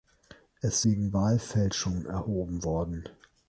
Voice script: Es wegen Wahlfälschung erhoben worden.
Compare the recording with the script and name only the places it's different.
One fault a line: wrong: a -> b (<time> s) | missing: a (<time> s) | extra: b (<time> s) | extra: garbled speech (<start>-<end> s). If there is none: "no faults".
no faults